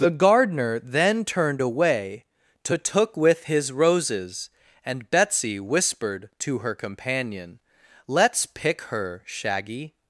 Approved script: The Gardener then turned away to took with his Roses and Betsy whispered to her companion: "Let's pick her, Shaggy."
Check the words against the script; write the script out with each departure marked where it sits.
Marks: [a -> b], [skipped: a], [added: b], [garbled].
The Gardener then turned away to took with his Roses and Betsy whispered to her companion: "Let's pick her, Shaggy."